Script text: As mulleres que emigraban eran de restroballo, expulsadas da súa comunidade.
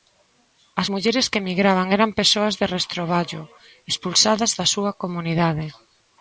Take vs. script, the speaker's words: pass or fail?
fail